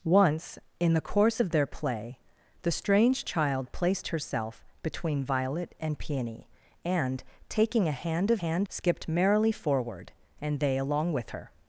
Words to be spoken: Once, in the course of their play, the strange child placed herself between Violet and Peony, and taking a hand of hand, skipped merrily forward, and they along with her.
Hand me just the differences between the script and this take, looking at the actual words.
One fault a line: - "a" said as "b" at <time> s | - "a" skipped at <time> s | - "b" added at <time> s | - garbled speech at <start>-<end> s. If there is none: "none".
none